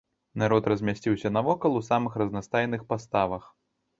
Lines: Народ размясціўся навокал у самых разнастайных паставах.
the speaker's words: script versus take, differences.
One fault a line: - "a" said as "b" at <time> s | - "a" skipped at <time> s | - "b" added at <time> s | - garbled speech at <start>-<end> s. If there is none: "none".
none